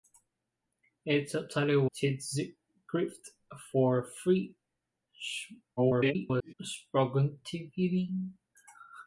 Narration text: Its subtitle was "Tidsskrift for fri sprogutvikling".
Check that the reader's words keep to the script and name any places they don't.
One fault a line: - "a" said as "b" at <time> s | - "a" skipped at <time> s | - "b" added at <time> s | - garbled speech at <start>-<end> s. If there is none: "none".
- "was" skipped at 1.9 s
- garbled speech at 5.8-6.5 s